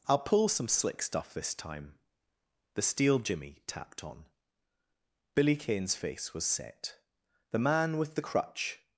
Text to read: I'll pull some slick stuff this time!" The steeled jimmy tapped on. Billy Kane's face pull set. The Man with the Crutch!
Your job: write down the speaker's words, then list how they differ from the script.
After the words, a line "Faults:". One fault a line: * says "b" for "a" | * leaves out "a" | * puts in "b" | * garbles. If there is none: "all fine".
I'll pull some slick stuff this time!" The steel jimmy tapped on. Billy Kane's face was set. The Man with the Crutch!
Faults:
* says "steel" for "steeled"
* says "was" for "pull"